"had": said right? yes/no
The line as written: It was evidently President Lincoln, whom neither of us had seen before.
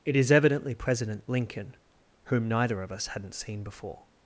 no